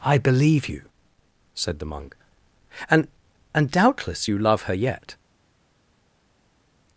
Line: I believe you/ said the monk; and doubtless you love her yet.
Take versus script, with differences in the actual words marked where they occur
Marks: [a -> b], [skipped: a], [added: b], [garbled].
I believe you/ said the monk; and [added: and] doubtless you love her yet.